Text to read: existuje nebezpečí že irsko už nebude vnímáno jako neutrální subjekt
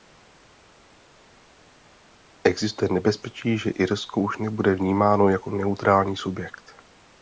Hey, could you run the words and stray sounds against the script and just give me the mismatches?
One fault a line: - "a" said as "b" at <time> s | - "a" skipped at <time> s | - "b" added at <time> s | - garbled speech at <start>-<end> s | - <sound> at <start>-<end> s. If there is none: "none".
none